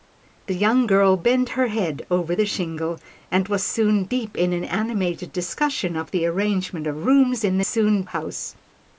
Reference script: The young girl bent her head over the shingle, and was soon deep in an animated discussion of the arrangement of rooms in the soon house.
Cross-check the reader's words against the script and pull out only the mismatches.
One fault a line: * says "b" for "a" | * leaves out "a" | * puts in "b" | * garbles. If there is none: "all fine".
all fine